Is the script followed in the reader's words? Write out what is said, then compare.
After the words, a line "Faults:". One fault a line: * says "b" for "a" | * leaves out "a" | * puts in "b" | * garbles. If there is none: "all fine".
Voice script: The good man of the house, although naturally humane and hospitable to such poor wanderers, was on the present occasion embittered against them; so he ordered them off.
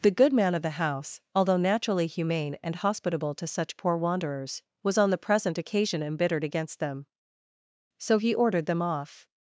The good man of the house, although naturally humane and hospitable to such poor wanderers, was on the present occasion embittered against them; so he ordered them off.
Faults:
all fine